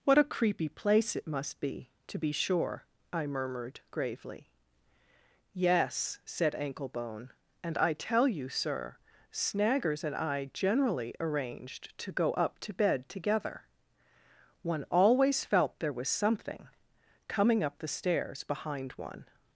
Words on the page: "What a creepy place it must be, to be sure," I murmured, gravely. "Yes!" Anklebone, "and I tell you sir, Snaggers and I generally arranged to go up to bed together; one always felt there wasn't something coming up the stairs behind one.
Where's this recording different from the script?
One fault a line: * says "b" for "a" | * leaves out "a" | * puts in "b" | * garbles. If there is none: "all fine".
* puts in "said"
* says "was" for "wasn't"